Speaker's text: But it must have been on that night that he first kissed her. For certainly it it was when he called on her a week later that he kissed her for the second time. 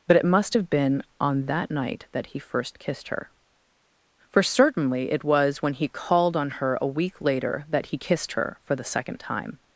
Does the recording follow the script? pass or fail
fail